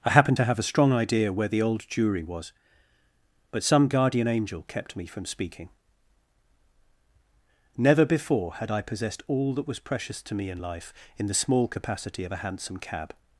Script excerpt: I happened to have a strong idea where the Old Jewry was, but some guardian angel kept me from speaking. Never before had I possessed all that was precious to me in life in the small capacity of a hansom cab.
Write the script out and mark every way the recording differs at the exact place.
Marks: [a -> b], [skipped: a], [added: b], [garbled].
I happened to have a strong idea where the Old Jewry was, but some guardian angel kept me from speaking. Never before had I possessed all that was precious to me in life in the small capacity of a hansom cab.